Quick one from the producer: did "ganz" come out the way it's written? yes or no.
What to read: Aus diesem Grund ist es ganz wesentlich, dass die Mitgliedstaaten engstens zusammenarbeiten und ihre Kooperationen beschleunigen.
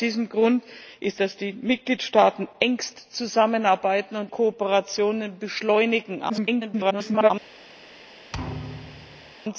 no